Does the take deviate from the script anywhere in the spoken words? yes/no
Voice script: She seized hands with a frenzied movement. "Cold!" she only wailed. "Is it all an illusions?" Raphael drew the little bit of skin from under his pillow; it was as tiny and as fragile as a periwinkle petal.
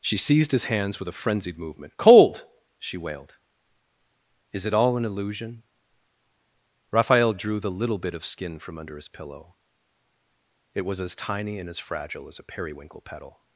yes